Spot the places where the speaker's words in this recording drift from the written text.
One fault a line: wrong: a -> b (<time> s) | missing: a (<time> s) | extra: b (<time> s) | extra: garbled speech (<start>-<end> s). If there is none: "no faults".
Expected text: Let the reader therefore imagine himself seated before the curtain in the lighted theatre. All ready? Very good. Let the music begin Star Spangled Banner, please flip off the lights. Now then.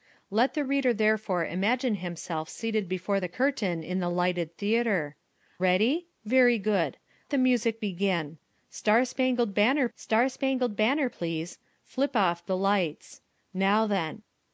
missing: All (5.2 s)
missing: Let (7.0 s)
extra: Star Spangled Banner (9.9 s)